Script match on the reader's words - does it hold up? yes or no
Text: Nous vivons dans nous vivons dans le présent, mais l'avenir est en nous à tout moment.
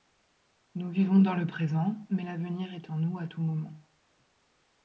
no